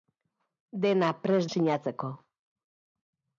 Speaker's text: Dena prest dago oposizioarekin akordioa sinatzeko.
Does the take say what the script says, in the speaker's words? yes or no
no